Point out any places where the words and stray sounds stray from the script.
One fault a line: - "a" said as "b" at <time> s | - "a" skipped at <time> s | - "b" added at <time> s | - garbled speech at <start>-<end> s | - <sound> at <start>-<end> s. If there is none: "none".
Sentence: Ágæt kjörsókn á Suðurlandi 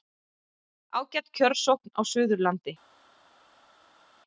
none